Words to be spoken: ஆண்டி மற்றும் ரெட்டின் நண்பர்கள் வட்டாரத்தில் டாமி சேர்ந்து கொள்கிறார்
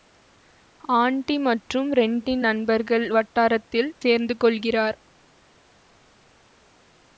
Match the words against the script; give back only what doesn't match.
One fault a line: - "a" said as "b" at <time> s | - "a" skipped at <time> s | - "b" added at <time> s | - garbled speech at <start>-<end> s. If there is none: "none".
- "டாமி" skipped at 3.9 s